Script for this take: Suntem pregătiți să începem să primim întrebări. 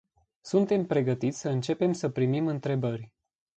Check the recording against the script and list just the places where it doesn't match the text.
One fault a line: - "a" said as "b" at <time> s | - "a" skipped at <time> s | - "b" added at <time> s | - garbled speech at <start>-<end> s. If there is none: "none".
none